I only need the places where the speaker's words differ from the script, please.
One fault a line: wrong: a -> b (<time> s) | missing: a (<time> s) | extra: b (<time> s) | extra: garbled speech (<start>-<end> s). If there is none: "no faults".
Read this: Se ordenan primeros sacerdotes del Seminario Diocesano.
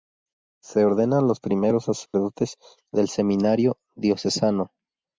extra: los (1.3 s)